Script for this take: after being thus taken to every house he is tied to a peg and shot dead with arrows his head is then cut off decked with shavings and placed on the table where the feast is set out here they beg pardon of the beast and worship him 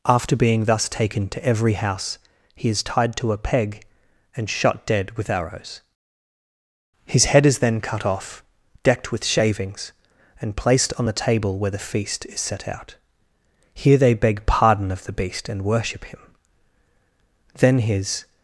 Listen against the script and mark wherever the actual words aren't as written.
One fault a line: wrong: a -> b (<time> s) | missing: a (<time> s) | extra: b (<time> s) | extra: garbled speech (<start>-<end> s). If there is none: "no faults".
extra: then his (17.6 s)